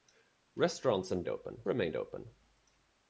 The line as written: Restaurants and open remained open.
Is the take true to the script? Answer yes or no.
yes